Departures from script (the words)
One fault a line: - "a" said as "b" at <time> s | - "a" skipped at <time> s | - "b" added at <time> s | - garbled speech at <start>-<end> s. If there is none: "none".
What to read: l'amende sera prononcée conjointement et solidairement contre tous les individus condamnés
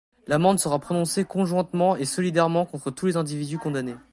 none